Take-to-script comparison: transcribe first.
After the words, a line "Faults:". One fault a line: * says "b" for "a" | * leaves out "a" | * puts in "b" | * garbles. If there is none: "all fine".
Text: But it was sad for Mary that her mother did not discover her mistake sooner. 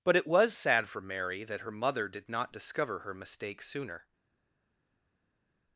But it was sad for Mary that her mother did not discover her mistake sooner.
Faults:
all fine